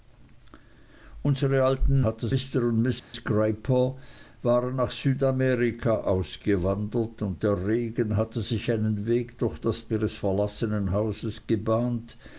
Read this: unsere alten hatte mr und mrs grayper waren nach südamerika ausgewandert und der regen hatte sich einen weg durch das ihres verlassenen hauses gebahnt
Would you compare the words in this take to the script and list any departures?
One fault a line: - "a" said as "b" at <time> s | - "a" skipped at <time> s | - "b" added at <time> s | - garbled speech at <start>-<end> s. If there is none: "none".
none